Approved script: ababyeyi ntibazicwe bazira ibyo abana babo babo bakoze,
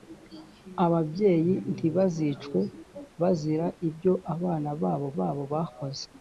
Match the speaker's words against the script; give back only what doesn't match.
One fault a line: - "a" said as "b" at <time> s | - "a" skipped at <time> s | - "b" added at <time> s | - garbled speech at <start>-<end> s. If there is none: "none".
none